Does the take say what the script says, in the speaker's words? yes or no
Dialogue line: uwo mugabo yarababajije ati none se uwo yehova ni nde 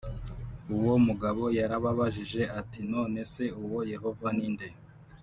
yes